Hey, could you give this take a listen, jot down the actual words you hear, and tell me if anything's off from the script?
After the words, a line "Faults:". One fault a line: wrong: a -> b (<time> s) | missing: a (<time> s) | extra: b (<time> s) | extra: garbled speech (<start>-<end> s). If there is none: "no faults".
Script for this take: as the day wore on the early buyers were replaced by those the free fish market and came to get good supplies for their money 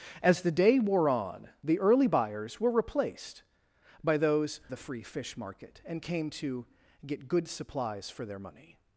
as the day wore on the early buyers were replaced by those the free fish market and came to get good supplies for their money
Faults:
no faults